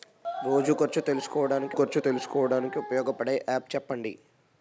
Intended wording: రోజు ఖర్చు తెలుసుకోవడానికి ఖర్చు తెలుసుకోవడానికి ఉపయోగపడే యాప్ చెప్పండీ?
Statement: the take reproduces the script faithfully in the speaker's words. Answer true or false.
true